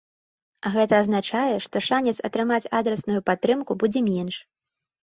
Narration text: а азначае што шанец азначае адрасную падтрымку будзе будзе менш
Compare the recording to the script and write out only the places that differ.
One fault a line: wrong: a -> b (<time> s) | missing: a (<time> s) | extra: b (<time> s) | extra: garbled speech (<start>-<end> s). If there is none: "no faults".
extra: гэта (0.8 s)
wrong: азначае -> атрымаць (2.3 s)
missing: будзе (4.1 s)